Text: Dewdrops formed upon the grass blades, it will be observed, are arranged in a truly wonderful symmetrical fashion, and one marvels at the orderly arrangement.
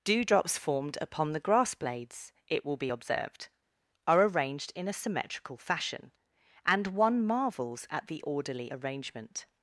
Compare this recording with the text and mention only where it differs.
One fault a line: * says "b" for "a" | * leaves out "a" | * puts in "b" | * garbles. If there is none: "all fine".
* leaves out "truly wonderful"